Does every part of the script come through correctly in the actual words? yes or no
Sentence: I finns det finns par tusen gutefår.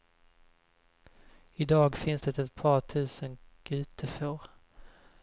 no